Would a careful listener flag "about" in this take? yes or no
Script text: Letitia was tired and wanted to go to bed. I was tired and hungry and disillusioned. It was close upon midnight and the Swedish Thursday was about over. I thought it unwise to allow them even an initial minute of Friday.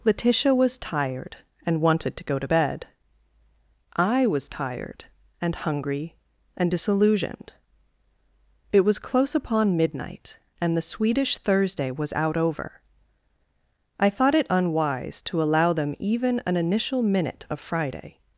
yes